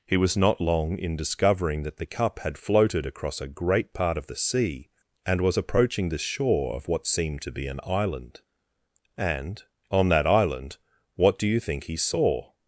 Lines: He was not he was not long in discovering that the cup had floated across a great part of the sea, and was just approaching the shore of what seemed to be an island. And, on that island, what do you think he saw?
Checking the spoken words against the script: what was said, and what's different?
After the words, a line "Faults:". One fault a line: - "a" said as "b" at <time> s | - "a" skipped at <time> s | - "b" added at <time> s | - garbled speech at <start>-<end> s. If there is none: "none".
He was not long in discovering that the cup had floated across a great part of the sea, and was approaching the shore of what seemed to be an island. And, on that island, what do you think he saw?
Faults:
- "he was not" skipped at 0.6 s
- "just" skipped at 5.6 s